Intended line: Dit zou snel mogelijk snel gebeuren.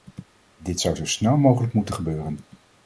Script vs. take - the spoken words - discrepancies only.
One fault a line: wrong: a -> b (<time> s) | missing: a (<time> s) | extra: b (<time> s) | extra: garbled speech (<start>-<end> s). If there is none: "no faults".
extra: zo (0.9 s)
wrong: snel -> moeten (1.7 s)